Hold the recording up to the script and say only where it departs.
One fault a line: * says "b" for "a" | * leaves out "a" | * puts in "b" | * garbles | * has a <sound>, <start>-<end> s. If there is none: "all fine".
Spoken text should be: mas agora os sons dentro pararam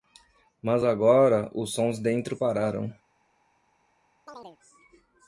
* has a chirp, 4.3-4.6 s